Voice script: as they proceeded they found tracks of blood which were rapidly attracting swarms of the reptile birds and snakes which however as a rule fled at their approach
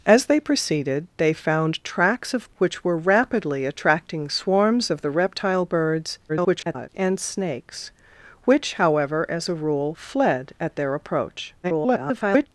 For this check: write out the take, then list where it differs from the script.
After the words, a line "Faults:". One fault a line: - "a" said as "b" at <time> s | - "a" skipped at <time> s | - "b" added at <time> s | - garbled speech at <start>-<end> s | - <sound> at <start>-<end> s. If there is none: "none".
as they proceeded they found tracks of which were rapidly attracting swarms of the reptile birds [garbled] and snakes which however as a rule fled at their approach [garbled]
Faults:
- "blood" skipped at 2.5 s
- garbled speech at 6.3-6.9 s
- garbled speech at 11.6-12.5 s